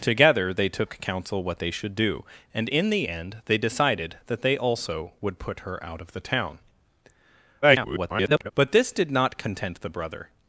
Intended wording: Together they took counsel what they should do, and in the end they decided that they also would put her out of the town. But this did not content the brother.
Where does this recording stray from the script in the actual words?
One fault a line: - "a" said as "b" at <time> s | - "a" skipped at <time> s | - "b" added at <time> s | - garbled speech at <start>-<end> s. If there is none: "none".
- garbled speech at 7.6-8.5 s